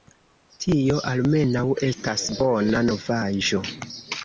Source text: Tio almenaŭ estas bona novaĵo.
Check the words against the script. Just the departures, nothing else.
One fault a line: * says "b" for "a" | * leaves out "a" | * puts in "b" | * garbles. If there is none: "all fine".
all fine